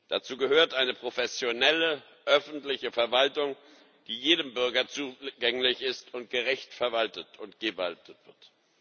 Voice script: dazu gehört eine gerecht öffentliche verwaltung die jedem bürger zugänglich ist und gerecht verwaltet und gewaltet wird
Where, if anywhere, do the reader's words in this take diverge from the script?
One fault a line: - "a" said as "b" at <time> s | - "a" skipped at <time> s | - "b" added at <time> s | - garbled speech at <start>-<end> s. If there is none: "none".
- "gerecht" said as "professionelle" at 0.9 s